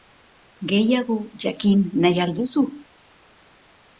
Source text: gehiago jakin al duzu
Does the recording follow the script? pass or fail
fail